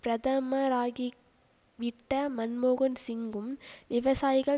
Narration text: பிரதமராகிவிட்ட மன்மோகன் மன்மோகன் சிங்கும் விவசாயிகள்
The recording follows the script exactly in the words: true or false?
false